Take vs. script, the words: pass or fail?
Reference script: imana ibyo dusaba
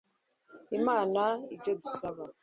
pass